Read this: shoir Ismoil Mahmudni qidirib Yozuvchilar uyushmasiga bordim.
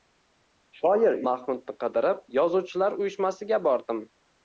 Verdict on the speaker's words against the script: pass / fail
fail